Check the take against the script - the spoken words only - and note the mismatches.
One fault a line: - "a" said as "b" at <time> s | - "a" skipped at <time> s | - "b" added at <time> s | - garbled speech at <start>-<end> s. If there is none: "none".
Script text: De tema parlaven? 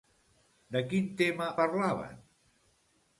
- "quin" added at 0.9 s